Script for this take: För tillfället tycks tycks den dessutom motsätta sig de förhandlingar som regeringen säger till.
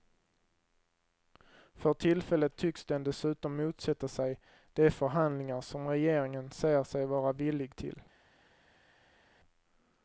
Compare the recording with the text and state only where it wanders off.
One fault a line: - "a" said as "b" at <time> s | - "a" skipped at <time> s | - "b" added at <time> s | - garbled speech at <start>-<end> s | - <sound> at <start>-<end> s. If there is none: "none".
- "tycks" skipped at 2.9 s
- "sig vara villig" added at 6.8 s